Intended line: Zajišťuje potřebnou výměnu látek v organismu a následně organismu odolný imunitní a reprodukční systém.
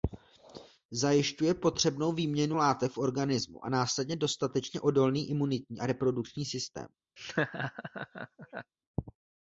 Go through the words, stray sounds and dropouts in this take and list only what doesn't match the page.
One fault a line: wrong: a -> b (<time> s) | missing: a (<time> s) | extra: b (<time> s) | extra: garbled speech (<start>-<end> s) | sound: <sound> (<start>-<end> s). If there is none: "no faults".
wrong: organismu -> dostatečně (4.2 s)
sound: laugh (7.2-8.7 s)